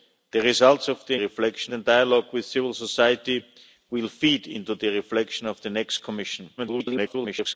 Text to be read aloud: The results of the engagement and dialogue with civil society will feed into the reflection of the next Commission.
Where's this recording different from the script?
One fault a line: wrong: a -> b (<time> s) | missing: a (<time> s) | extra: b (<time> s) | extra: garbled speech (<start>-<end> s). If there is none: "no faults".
wrong: engagement -> reflection (1.1 s)
extra: garbled speech (6.6-7.5 s)